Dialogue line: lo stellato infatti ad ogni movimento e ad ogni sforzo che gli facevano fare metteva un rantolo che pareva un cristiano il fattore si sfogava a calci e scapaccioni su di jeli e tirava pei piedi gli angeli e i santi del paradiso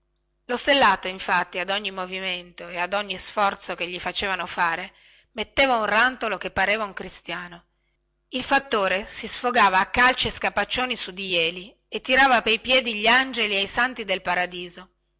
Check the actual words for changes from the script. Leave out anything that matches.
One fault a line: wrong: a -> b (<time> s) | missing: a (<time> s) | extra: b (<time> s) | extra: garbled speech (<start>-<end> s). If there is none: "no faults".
no faults